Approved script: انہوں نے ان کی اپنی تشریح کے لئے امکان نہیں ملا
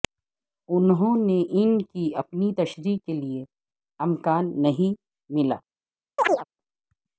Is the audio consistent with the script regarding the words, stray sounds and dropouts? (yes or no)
no